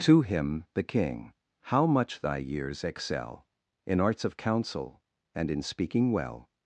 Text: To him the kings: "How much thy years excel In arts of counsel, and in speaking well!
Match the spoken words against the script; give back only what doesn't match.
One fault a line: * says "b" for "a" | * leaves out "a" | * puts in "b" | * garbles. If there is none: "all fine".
* says "king" for "kings"